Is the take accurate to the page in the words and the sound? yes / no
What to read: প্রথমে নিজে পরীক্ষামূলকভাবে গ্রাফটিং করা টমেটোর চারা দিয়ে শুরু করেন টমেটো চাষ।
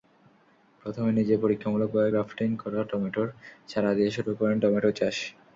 yes